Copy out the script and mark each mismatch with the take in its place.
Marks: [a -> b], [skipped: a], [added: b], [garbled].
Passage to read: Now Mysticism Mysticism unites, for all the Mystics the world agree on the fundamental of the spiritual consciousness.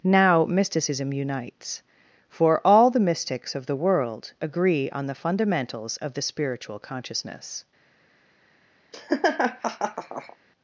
Now Mysticism [skipped: Mysticism] unites, for all the Mystics [added: of] the world agree on the [fundamental -> fundamentals] of the spiritual consciousness.